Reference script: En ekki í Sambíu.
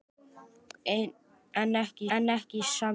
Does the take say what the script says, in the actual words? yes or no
no